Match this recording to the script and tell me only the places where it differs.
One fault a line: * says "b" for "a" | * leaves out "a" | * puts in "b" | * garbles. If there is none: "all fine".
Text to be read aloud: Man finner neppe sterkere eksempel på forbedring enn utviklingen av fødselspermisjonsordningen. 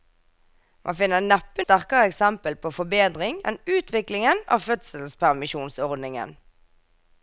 all fine